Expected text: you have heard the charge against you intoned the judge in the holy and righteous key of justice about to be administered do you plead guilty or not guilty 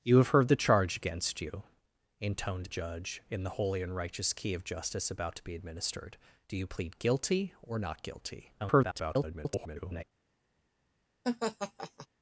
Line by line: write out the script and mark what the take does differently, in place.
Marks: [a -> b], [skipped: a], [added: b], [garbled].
you have heard the charge against you intoned [skipped: the] judge in the holy and righteous key of justice about to be administered do you plead guilty or not guilty [garbled]